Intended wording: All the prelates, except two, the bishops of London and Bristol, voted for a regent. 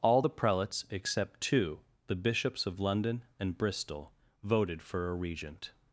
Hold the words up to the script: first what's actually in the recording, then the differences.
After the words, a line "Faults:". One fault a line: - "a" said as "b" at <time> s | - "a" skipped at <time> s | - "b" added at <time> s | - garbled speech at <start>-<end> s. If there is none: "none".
All the prelates, except two, the bishops of London and Bristol, voted for a regent.
Faults:
none